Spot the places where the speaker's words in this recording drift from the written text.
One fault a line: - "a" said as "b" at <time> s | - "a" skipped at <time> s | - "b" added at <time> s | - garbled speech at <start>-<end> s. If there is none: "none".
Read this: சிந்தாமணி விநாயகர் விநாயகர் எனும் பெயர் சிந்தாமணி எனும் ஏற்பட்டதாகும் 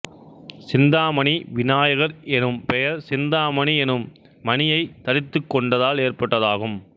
- "விநாயகர்" skipped at 2.1 s
- "மணியைத் தரித்துக் கொண்டதால்" added at 4.4 s